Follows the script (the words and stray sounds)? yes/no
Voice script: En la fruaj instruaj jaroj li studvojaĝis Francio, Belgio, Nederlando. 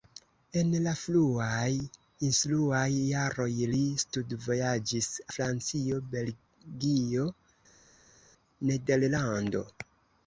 yes